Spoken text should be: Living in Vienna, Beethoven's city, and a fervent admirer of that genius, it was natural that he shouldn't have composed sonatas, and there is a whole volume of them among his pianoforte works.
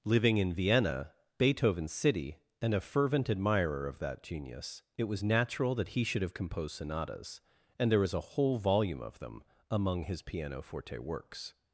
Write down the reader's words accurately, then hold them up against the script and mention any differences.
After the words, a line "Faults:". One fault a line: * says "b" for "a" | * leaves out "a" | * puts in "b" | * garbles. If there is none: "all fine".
Living in Vienna, Beethoven's city, and a fervent admirer of that genius, it was natural that he should have composed sonatas, and there is a whole volume of them among his pianoforte works.
Faults:
* says "should" for "shouldn't"